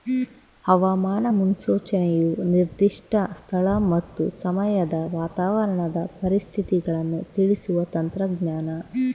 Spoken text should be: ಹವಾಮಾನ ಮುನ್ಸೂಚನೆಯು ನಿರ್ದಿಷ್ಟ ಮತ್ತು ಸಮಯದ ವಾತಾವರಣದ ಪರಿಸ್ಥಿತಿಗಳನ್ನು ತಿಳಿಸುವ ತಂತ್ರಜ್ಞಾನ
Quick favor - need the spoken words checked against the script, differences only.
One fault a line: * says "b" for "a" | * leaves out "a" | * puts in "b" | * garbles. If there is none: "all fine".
* puts in "ಸ್ಥಳ"